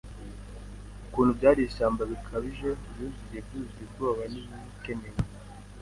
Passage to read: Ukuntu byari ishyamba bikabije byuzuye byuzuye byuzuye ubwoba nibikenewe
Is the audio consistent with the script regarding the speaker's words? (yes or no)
no